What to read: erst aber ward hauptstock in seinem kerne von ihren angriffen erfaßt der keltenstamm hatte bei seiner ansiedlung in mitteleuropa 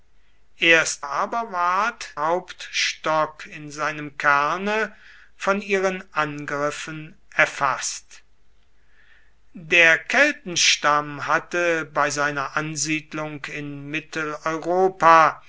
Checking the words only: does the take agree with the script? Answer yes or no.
yes